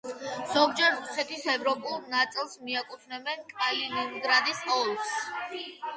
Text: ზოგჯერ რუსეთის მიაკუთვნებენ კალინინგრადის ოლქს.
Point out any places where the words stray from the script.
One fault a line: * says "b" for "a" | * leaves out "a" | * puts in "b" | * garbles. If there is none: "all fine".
* puts in "ევროპულ ნაწილს"